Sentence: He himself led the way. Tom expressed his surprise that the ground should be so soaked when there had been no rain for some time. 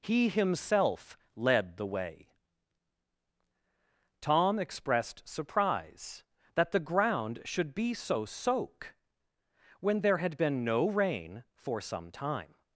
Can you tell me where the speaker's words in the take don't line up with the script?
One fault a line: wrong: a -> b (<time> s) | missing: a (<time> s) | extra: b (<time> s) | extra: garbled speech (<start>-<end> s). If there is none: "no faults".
missing: his (5.3 s)
wrong: soaked -> soak (8.2 s)